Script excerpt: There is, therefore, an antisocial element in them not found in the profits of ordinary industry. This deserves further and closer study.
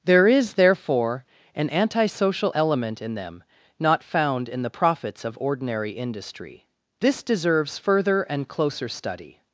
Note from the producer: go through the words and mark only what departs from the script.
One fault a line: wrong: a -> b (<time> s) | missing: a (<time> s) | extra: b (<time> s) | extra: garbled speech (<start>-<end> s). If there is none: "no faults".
no faults